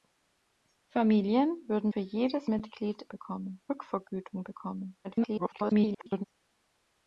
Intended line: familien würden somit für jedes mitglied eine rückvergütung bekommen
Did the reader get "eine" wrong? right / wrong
wrong